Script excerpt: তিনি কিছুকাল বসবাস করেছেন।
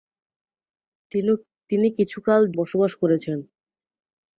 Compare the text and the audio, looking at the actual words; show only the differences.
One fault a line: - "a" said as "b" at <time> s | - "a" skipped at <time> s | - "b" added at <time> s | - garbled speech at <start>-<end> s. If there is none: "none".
none